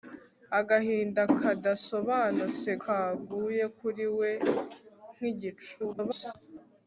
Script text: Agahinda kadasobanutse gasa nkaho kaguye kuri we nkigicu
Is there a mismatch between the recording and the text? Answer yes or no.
yes